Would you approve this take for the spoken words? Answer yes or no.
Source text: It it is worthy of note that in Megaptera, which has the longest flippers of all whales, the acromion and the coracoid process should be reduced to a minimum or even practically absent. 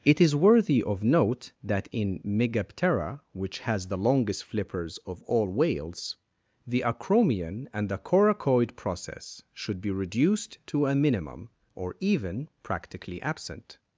no